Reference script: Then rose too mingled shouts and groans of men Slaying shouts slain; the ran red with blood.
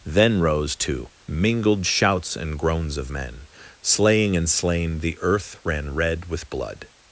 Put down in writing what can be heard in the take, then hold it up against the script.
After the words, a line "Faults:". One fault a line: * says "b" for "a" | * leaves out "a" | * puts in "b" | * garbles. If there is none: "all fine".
Then rose too mingled shouts and groans of men Slaying and slain; the earth ran red with blood.
Faults:
* says "and" for "shouts"
* puts in "earth"